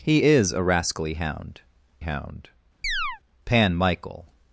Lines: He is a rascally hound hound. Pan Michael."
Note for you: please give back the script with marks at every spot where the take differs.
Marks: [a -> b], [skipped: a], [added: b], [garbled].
He is a rascally hound hound. Pan Michael."